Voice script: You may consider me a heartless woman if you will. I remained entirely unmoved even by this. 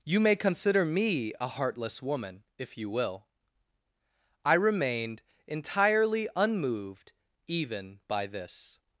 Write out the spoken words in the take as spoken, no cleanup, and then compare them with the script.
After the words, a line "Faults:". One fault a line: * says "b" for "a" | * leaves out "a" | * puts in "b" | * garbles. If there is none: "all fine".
You may consider me a heartless woman if you will. I remained entirely unmoved even by this.
Faults:
all fine